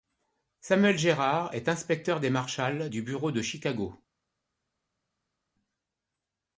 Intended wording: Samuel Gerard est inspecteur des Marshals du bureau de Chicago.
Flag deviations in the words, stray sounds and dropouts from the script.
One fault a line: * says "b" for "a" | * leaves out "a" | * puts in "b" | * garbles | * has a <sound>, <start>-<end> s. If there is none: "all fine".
all fine